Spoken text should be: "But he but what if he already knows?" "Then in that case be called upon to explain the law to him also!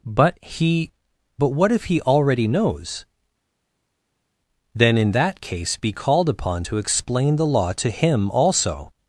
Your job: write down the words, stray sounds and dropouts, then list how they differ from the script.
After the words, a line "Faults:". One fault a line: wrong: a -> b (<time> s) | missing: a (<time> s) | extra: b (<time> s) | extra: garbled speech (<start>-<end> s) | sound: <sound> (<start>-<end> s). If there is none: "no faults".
"But he but what if he already knows?" "Then in that case be called upon to explain the law to him also!
Faults:
no faults